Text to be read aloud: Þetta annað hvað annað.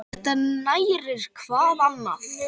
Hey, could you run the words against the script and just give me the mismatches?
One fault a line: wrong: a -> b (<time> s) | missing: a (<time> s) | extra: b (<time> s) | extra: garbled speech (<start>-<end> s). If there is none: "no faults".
wrong: annað -> nærir (0.4 s)